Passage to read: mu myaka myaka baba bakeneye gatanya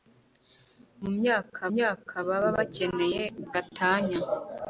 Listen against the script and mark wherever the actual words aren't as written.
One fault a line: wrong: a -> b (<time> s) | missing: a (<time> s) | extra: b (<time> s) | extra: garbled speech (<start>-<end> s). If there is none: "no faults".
no faults